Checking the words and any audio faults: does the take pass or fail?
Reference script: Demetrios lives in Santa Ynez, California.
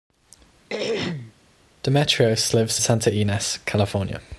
fail